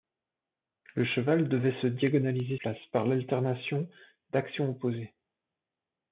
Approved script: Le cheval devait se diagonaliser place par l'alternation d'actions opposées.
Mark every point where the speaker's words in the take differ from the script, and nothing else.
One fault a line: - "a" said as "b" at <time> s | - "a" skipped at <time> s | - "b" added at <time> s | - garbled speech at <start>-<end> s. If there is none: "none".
none